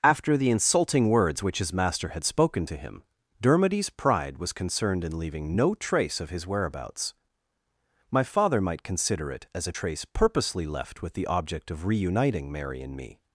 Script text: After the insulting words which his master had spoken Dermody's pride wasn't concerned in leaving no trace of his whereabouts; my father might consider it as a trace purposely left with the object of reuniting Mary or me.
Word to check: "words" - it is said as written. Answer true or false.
true